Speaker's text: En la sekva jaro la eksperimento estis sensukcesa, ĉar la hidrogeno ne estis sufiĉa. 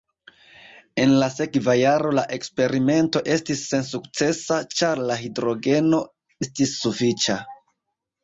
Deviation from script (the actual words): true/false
true